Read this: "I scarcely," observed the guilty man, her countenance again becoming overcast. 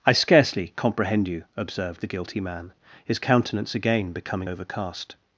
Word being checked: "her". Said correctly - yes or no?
no